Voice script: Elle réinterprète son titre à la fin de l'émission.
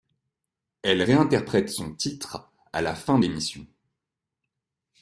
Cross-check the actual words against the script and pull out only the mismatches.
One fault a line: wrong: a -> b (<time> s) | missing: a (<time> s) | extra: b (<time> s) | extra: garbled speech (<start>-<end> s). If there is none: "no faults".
missing: de (3.2 s)